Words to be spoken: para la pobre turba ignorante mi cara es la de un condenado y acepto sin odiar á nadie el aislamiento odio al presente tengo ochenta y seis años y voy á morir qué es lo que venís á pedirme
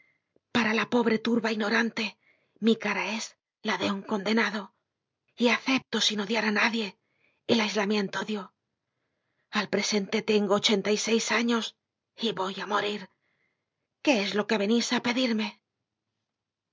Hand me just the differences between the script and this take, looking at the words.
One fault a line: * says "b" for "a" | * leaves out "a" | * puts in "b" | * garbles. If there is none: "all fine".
all fine